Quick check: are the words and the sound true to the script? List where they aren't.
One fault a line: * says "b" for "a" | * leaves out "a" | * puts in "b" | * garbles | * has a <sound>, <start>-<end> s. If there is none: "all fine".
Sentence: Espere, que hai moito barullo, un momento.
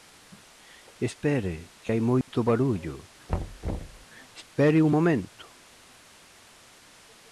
* has a dropout, 2.2-2.3 s
* has a thud, 3.3-4.1 s
* puts in "espere"